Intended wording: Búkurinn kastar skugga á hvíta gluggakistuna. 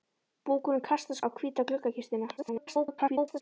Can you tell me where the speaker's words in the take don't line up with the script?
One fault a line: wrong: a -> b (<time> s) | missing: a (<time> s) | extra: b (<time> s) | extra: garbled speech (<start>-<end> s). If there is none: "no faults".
missing: skugga (1.2 s)
extra: garbled speech (2.4-3.4 s)